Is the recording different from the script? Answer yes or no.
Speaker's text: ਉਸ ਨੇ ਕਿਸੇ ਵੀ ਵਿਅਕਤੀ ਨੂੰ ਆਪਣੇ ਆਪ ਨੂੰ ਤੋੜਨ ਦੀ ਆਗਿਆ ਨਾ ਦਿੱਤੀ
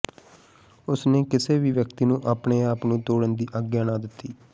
no